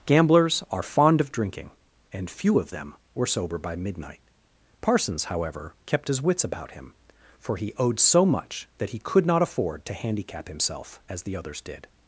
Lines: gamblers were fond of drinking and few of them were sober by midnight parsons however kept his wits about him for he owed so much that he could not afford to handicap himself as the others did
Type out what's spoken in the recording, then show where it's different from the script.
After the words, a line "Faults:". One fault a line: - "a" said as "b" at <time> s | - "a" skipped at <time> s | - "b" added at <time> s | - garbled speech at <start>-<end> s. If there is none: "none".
gamblers are fond of drinking and few of them were sober by midnight parsons however kept his wits about him for he owed so much that he could not afford to handicap himself as the others did
Faults:
- "were" said as "are" at 0.7 s